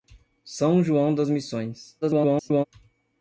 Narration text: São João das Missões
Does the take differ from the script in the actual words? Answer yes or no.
yes